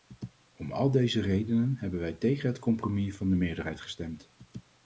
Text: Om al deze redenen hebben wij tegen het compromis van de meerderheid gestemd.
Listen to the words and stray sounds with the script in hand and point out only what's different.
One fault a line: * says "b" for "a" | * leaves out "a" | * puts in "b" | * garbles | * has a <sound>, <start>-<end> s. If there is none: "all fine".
all fine